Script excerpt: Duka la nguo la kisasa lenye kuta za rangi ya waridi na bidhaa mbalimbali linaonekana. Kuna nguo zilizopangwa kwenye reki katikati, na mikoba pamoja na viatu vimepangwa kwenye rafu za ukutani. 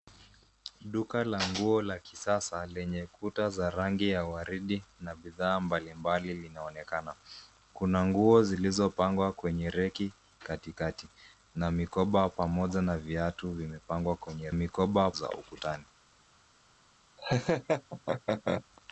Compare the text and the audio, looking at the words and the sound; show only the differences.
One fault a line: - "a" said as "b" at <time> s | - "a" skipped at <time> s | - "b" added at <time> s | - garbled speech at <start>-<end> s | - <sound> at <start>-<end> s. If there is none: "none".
- "rafu" said as "mikoba" at 14.5 s
- laugh at 17.2-18.6 s